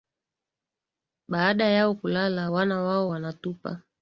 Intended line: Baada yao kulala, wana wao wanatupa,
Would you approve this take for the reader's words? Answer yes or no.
yes